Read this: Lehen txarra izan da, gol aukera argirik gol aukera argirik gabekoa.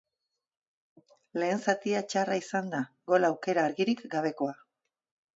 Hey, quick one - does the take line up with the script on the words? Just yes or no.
no